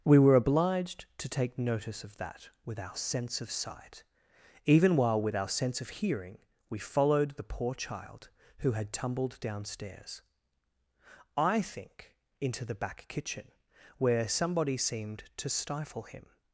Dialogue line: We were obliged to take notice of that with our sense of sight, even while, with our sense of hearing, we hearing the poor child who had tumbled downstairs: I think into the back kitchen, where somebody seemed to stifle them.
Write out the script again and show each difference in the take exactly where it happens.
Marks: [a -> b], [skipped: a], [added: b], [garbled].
We were obliged to take notice of that with our sense of sight, even while, with our sense of hearing, we [hearing -> followed] the poor child who had tumbled downstairs: I think into the back kitchen, where somebody seemed to stifle [them. -> him]